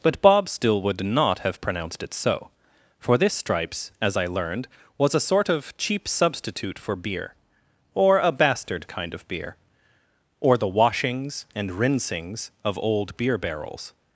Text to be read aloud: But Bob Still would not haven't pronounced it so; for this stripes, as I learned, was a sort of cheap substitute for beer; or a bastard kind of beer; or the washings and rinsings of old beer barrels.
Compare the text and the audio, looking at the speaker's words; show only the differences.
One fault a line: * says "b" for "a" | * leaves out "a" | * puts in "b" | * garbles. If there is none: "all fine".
* says "have" for "haven't"